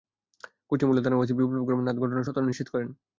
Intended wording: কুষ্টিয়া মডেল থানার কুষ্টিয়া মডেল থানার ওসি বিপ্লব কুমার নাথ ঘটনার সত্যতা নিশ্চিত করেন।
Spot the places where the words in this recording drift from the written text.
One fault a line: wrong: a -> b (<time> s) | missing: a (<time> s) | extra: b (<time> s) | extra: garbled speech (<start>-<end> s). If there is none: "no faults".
missing: কুষ্টিয়া মডেল থানার (1.2 s)